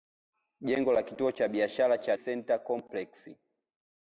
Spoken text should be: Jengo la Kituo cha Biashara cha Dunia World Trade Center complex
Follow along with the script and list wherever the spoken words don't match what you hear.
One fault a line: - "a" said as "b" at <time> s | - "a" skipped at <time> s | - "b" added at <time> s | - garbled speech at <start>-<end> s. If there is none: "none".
- "Dunia World Trade" skipped at 2.2 s